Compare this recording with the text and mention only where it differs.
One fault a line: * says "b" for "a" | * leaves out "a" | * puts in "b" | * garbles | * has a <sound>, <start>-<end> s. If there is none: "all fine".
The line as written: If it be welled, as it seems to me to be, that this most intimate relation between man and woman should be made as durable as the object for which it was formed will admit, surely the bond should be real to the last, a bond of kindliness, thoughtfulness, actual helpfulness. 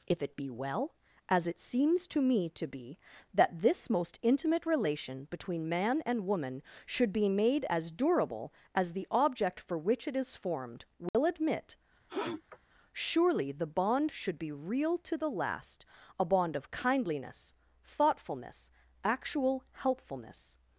* says "well" for "welled"
* says "is" for "was"
* has a dropout, 11.1-11.1 s
* has a sniff, 12.1-12.6 s